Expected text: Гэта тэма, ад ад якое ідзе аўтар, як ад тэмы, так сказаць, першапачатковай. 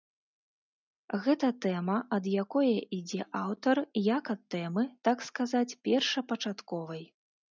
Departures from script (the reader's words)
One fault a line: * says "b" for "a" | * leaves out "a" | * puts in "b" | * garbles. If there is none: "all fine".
* leaves out "ад"